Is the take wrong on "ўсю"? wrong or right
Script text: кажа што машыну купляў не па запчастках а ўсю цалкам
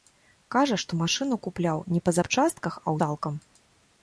wrong